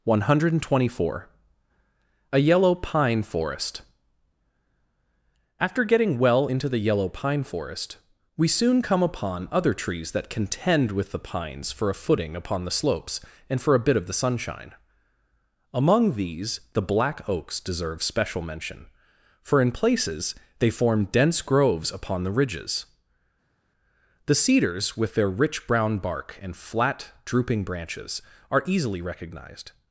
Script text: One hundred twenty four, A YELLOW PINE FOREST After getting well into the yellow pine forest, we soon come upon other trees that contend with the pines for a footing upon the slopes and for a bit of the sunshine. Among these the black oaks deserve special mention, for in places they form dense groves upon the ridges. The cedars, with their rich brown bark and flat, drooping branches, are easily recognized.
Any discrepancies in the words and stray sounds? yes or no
no